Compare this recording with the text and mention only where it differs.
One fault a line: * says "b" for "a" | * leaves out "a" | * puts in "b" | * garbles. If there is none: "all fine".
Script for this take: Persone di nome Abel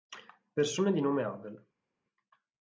all fine